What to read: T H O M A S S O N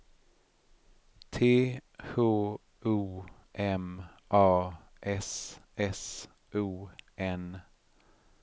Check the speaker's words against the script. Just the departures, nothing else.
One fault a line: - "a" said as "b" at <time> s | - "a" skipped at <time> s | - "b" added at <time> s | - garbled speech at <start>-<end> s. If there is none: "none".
none